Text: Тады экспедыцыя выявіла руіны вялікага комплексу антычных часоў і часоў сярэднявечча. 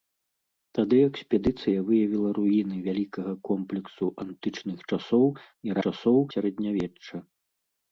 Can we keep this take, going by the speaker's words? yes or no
yes